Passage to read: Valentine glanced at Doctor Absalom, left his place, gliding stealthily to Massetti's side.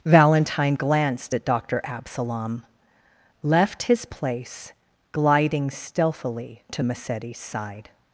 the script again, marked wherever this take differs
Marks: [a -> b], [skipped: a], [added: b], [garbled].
Valentine glanced at Doctor Absalom, left his place, gliding stealthily to Massetti's side.